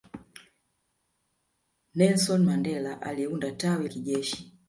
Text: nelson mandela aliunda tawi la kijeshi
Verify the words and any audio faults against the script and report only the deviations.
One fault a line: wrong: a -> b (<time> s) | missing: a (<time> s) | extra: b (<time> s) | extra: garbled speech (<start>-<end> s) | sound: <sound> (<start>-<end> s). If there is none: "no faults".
missing: la (3.9 s)